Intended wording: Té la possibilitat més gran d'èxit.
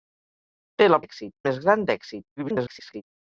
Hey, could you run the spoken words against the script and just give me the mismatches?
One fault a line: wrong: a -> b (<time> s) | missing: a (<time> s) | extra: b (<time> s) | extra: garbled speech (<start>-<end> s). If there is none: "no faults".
wrong: possibilitat -> d'èxit (1.0 s)
extra: garbled speech (2.4-3.0 s)